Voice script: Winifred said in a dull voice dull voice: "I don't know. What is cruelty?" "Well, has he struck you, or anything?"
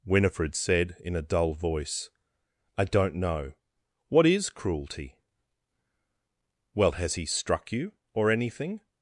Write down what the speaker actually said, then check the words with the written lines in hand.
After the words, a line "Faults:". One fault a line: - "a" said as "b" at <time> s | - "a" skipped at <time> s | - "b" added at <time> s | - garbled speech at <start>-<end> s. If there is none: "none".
Winifred said in a dull voice: "I don't know. What is cruelty?" "Well, has he struck you, or anything?"
Faults:
- "dull voice" skipped at 2.1 s